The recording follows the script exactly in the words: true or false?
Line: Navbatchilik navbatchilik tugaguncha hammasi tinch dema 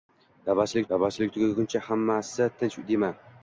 true